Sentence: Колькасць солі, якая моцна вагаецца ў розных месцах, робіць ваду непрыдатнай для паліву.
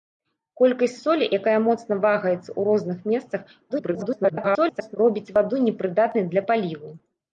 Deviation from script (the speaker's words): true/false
true